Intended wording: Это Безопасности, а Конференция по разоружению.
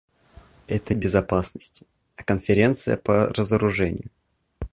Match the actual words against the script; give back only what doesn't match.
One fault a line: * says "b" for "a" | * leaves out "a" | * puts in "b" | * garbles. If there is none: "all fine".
all fine